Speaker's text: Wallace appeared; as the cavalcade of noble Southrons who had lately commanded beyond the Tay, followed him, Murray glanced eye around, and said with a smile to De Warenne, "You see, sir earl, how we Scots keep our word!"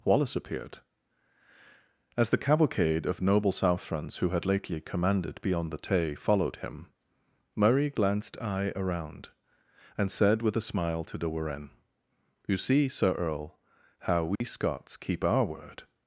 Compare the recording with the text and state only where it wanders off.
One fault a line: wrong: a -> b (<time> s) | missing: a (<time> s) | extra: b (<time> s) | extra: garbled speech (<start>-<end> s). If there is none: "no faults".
no faults